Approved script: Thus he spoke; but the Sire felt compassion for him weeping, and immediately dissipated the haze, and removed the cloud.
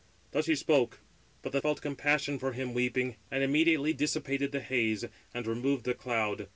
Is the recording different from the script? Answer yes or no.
yes